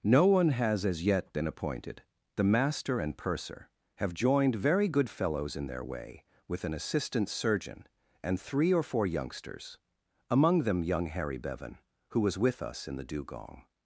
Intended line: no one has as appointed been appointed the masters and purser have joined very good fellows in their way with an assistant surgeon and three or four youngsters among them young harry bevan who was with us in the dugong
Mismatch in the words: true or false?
true